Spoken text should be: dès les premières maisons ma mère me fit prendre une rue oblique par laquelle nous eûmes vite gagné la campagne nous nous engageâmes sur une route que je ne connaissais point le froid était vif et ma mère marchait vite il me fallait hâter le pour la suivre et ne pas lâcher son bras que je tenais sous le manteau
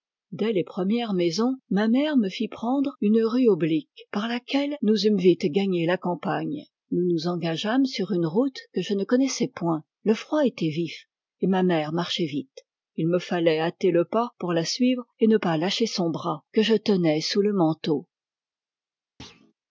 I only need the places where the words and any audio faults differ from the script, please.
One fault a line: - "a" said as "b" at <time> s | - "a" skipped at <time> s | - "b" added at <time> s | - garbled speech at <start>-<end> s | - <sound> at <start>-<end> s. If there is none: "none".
- "pas" added at 14.0 s
- thud at 19.2-19.5 s